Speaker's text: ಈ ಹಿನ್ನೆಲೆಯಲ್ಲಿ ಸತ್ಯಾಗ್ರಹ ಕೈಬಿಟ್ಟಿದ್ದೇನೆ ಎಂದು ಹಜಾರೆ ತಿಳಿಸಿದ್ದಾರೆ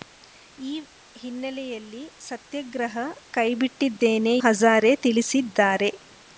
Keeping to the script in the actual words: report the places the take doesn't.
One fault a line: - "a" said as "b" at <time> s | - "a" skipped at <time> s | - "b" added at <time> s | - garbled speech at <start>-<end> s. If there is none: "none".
- "ಎಂದು" skipped at 4.3 s